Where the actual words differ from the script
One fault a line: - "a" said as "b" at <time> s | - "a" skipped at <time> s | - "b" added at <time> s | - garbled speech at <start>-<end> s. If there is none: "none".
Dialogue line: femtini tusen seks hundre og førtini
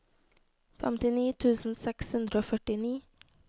none